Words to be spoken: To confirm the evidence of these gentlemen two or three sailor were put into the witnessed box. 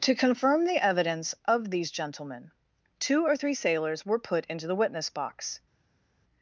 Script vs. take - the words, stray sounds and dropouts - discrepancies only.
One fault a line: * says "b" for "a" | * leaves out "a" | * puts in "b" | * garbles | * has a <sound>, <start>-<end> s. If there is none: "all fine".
* says "sailors" for "sailor"
* says "witness" for "witnessed"